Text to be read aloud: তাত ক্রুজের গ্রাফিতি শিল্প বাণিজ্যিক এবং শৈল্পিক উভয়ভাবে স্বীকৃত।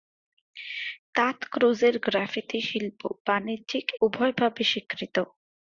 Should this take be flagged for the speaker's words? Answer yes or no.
yes